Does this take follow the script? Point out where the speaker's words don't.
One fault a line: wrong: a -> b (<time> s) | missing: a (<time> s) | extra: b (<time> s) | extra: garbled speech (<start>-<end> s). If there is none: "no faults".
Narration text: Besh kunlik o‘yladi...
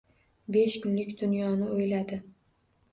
extra: dunyoni (1.2 s)